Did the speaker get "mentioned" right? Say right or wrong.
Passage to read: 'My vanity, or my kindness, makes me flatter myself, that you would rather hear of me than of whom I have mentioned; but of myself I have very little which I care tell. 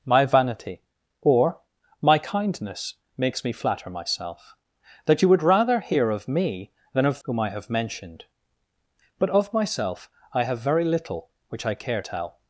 right